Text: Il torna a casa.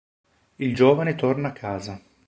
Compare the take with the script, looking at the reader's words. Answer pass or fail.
fail